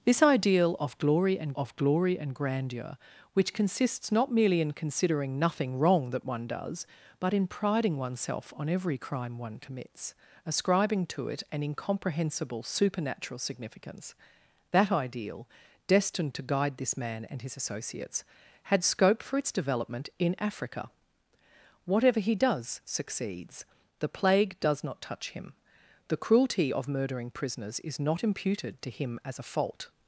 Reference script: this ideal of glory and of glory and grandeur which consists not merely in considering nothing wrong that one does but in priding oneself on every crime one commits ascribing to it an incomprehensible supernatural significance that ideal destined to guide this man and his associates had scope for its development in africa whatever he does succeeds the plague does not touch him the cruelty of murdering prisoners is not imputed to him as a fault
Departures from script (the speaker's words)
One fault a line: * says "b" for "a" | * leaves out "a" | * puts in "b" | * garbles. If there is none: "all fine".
all fine